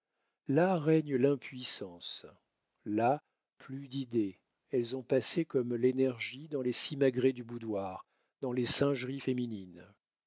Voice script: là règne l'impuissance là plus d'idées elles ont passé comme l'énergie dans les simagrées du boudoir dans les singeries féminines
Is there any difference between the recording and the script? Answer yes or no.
no